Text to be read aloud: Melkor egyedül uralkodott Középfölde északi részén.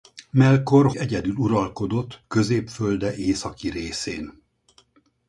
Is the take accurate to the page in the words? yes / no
yes